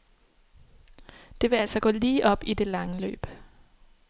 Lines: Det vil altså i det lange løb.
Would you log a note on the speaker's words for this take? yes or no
yes